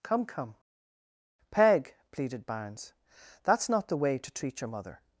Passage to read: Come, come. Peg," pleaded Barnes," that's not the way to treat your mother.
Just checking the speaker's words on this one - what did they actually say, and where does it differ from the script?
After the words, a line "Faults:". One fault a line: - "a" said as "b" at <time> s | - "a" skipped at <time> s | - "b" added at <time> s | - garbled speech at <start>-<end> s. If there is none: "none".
Come, come. Peg," pleaded Barnes," that's not the way to treat your mother.
Faults:
none